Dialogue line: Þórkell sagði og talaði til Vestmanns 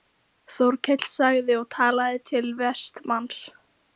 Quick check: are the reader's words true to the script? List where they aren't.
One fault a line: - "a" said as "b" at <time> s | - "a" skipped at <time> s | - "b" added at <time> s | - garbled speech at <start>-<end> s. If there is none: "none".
none